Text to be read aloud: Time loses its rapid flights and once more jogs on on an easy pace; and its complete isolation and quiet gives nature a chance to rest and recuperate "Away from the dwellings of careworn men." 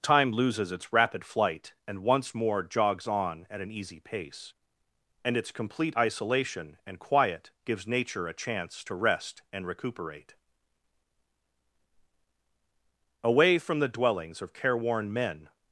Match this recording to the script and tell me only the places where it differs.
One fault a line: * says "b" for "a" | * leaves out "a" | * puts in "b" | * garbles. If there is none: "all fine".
* says "flight" for "flights"
* says "at" for "on"